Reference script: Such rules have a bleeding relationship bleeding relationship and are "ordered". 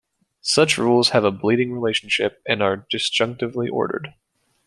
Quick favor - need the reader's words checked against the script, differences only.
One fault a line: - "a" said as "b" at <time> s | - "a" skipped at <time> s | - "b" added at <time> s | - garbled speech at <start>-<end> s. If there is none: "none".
- "bleeding relationship" skipped at 2.4 s
- "disjunctively" added at 2.9 s